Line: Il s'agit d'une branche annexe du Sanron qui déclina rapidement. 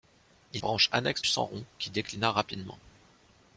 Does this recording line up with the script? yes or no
no